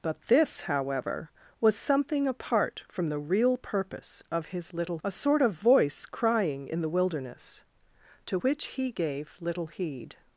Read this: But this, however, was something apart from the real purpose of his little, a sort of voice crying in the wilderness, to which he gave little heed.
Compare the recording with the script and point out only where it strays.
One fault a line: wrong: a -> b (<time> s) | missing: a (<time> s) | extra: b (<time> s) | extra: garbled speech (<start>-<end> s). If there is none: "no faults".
no faults